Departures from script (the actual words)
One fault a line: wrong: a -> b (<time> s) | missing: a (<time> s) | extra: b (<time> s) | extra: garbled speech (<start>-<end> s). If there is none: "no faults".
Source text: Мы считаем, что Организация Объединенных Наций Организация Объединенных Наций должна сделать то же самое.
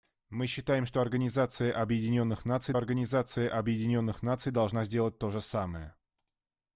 no faults